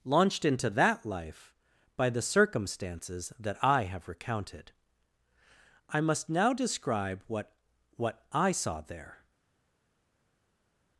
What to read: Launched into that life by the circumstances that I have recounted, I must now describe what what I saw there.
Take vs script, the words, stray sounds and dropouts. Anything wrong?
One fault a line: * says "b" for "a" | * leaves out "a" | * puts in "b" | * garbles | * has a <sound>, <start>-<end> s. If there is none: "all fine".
all fine